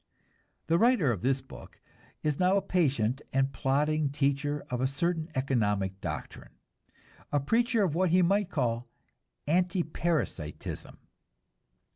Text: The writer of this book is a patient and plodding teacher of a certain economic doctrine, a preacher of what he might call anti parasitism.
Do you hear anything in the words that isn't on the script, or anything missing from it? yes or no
yes